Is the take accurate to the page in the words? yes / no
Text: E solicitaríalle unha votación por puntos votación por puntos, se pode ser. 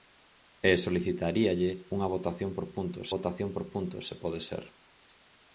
yes